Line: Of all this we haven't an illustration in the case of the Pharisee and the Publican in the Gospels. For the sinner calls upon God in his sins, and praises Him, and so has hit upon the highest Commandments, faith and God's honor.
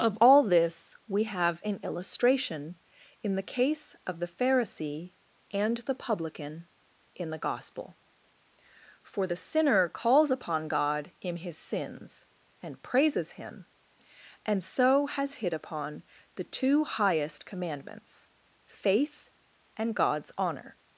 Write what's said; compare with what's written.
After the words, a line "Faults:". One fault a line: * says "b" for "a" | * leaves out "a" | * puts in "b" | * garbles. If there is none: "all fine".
Of all this we have an illustration in the case of the Pharisee and the Publican in the Gospel. For the sinner calls upon God in his sins, and praises Him, and so has hit upon the two highest Commandments, faith and God's honor.
Faults:
* says "have" for "haven't"
* says "Gospel" for "Gospels"
* puts in "two"